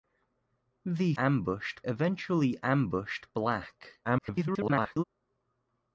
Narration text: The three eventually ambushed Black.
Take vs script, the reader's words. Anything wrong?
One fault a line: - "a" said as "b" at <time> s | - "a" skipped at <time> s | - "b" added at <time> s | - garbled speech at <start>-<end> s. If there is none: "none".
- "three" said as "ambushed" at 1.2 s
- garbled speech at 4.0-5.0 s